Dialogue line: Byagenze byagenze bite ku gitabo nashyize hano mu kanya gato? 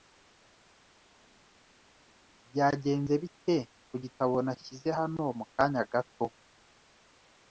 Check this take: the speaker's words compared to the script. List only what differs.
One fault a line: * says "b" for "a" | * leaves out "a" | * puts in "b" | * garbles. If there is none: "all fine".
* leaves out "byagenze"